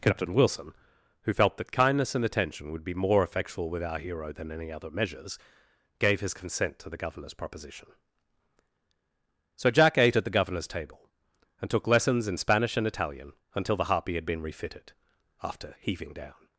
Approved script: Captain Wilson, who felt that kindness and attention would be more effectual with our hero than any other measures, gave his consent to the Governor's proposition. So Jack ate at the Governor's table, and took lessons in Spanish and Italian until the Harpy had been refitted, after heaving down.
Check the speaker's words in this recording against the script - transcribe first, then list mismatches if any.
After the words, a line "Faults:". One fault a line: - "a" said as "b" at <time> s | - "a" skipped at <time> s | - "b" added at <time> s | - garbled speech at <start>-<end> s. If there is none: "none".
Captain Wilson, who felt that kindness and attention would be more effectual with our hero than any other measures, gave his consent to the Governor's proposition. So Jack ate at the Governor's table, and took lessons in Spanish and Italian until the Harpy had been refitted, after heaving down.
Faults:
none